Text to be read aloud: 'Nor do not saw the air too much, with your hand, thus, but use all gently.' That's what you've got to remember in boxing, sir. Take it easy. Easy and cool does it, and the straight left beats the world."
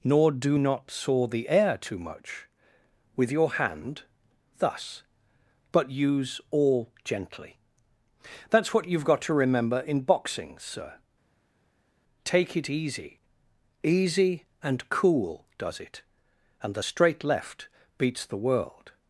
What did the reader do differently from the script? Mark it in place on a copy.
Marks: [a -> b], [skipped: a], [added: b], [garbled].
'Nor do not saw the air too much, with your hand, thus, but use all gently.' That's what you've got to remember in boxing, sir. Take it easy. Easy and cool does it, and the straight left beats the world."